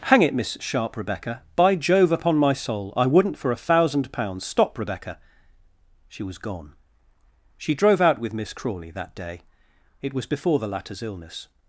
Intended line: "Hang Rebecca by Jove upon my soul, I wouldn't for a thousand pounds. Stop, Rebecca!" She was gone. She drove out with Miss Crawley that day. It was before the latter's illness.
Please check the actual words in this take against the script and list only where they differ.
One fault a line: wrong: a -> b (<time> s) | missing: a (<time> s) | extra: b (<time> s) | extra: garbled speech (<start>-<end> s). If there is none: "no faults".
extra: it Miss Sharp (0.2 s)